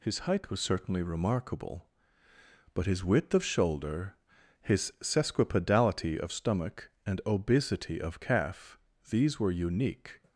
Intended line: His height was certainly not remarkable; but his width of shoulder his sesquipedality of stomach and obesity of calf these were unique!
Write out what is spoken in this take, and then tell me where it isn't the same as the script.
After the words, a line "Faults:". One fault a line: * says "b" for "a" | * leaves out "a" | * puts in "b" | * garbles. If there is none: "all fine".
His height was certainly remarkable; but his width of shoulder his sesquipedality of stomach and obesity of calf these were unique!
Faults:
* leaves out "not"